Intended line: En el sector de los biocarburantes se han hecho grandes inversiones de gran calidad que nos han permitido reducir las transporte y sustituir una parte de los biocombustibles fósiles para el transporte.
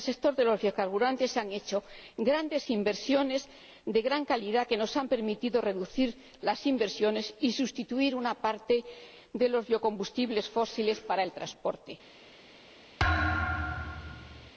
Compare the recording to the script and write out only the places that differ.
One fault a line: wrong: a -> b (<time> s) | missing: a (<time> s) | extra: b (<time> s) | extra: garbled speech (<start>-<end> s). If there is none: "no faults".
wrong: transporte -> emisiones (6.7 s)